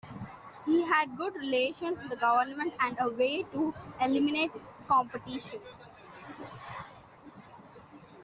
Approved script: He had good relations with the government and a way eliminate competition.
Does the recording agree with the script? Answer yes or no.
no